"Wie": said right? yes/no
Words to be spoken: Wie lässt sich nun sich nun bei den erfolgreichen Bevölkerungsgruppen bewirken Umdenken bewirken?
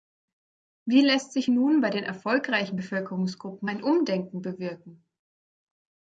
yes